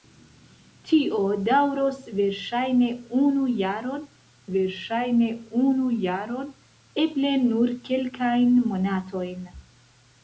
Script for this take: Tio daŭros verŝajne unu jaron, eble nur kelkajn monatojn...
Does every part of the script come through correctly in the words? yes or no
no